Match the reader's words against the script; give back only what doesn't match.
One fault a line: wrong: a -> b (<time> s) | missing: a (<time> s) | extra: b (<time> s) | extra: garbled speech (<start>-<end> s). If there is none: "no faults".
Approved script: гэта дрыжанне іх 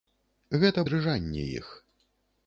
no faults